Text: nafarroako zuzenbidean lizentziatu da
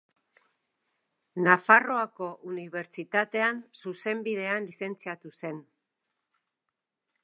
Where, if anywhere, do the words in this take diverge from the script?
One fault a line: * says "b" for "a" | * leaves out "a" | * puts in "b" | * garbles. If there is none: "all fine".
* puts in "unibertsitatean"
* says "zen" for "da"